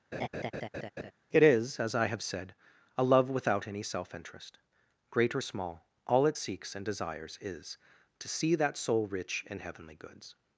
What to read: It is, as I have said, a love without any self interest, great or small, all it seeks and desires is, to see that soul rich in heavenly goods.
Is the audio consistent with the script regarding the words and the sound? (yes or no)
no